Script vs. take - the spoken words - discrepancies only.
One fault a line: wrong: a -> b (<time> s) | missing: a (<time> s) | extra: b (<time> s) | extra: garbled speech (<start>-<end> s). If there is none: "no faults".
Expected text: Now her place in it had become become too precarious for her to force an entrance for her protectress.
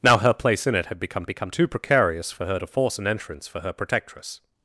no faults